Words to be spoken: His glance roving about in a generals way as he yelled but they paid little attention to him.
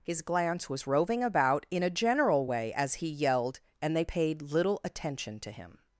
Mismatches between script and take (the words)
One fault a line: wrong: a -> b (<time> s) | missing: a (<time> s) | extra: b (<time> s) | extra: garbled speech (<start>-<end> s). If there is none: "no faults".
extra: was (0.7 s)
wrong: generals -> general (1.9 s)
wrong: but -> and (3.8 s)